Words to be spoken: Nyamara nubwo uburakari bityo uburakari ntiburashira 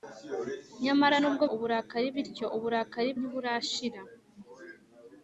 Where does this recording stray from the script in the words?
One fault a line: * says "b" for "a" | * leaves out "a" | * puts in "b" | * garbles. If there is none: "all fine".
all fine